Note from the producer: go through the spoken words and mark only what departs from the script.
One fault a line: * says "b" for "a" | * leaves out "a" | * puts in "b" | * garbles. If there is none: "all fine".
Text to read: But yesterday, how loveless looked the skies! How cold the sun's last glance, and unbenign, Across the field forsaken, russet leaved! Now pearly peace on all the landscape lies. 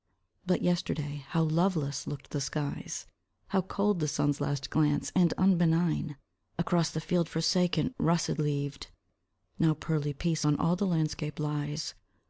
all fine